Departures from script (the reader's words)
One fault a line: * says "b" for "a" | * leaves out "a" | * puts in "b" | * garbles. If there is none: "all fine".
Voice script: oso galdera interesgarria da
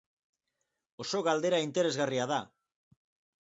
all fine